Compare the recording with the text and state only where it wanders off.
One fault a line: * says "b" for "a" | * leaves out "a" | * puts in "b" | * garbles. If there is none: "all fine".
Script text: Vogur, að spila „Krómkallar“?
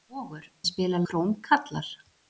all fine